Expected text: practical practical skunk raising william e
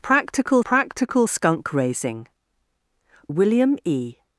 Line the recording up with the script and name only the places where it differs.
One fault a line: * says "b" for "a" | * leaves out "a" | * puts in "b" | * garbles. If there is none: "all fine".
all fine